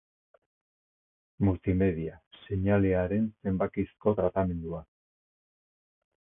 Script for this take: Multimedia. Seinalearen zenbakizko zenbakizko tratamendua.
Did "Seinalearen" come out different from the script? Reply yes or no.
no